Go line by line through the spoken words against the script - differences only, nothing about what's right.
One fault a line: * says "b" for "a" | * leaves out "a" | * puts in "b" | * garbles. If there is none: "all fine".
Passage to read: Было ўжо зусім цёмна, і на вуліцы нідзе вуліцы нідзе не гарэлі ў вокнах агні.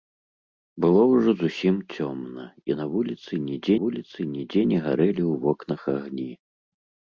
all fine